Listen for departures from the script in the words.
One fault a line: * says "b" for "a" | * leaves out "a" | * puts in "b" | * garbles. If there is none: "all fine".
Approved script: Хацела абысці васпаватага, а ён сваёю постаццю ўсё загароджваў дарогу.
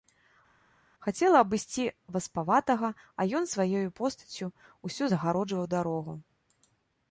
all fine